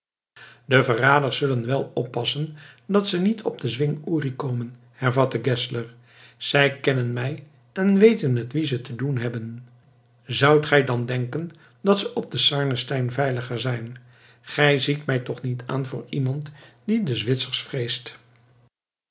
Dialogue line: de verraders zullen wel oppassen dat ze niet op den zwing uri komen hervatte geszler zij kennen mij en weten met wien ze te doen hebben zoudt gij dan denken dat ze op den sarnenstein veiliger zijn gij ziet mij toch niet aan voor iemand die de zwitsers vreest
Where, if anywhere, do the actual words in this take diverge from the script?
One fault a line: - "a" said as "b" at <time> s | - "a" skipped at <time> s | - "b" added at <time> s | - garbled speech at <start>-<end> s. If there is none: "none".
none